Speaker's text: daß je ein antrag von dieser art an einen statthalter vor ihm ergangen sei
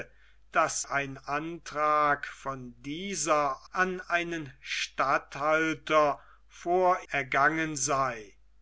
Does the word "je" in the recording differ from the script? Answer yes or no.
yes